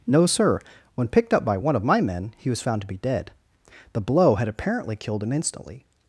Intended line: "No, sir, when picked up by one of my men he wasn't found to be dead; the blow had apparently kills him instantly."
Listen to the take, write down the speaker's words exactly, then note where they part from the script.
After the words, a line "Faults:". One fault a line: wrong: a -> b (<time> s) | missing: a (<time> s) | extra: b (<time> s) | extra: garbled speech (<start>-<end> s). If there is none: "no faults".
"No, sir, when picked up by one of my men he was found to be dead; the blow had apparently killed him instantly."
Faults:
wrong: wasn't -> was (2.5 s)
wrong: kills -> killed (5.0 s)